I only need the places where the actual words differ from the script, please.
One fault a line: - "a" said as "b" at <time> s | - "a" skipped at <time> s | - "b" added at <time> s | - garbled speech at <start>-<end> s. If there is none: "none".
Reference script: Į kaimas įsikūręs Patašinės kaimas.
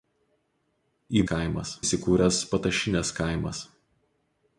none